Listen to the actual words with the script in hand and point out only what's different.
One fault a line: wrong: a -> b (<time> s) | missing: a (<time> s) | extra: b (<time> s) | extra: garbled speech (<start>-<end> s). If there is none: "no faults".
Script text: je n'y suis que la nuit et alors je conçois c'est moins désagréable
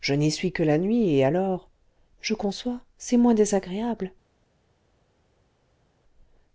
no faults